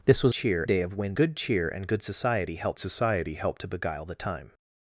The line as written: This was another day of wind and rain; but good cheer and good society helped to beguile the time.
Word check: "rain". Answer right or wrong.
wrong